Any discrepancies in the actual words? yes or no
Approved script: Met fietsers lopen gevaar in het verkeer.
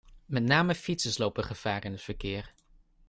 yes